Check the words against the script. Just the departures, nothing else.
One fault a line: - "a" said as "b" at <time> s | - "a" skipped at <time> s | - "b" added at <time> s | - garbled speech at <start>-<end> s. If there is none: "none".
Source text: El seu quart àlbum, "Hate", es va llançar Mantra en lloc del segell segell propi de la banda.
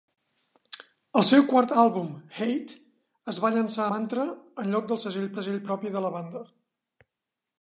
none